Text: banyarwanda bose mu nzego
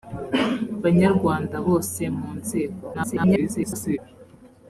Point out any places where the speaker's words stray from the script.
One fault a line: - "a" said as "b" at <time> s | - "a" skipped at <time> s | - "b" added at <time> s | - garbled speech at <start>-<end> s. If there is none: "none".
- garbled speech at 2.9-4.0 s